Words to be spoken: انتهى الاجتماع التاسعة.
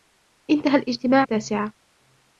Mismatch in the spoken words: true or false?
false